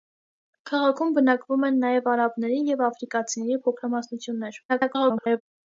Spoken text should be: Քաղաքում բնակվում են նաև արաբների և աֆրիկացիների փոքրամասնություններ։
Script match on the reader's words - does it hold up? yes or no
no